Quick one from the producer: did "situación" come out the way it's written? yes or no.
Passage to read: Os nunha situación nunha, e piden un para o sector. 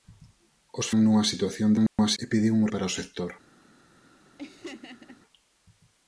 yes